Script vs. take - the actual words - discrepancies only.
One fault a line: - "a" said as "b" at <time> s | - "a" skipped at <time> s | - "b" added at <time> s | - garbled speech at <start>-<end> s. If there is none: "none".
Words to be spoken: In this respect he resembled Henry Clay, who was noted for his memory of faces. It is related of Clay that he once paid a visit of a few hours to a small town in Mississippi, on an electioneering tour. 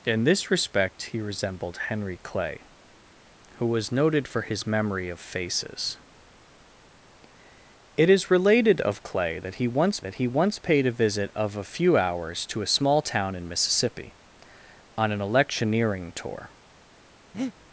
- "that he once" added at 10.0 s